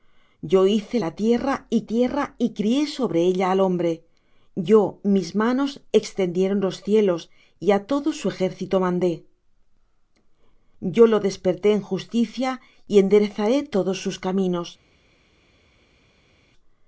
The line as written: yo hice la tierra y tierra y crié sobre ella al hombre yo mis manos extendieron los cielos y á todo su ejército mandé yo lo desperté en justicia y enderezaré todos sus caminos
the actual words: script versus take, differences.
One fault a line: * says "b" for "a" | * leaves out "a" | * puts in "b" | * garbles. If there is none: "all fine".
all fine